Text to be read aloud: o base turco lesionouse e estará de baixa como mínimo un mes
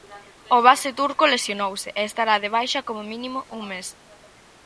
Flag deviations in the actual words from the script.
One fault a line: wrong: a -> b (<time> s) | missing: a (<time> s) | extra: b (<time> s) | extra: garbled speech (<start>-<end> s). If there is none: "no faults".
no faults